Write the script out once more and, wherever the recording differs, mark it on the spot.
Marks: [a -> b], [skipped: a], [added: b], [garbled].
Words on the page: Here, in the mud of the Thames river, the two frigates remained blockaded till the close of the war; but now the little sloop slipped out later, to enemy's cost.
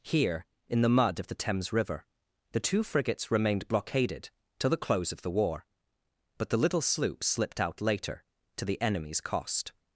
Here, in the mud of the Thames river, the two frigates remained blockaded till the close of the war; but [skipped: now] the little sloop slipped out later, to [added: the] enemy's cost.